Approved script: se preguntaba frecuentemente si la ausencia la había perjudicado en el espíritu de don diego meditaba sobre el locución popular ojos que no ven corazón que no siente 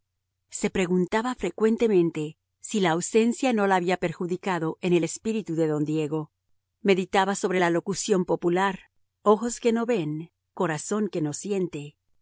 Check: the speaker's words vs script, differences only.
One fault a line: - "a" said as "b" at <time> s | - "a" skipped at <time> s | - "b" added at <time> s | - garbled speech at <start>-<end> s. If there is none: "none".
- "no" added at 3.5 s
- "el" said as "la" at 7.6 s